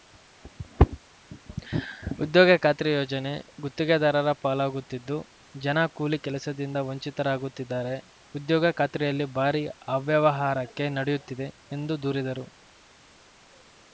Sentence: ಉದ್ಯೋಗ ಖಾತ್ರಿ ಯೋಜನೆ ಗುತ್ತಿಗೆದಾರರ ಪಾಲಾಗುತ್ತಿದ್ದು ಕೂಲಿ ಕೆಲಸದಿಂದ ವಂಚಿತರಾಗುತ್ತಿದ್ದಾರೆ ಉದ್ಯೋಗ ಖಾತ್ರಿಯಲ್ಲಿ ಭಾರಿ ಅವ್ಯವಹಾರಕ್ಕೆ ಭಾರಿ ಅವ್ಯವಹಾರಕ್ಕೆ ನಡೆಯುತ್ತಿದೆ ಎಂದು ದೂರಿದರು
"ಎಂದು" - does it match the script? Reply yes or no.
yes